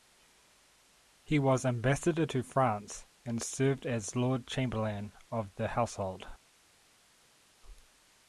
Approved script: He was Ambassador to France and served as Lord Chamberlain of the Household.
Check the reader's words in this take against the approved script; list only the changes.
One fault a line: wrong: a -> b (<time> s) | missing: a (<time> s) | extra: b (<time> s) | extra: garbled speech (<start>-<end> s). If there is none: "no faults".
no faults